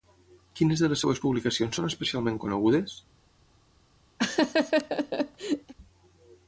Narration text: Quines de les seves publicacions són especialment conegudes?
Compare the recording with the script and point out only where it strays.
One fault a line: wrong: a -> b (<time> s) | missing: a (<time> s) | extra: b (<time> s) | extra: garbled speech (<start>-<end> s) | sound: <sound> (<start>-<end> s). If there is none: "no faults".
sound: laugh (4.2-5.7 s)